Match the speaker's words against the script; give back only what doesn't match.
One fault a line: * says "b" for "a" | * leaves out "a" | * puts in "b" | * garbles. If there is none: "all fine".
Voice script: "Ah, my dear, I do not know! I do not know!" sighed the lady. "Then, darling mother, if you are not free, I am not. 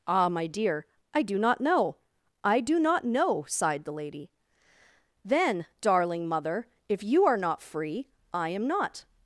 all fine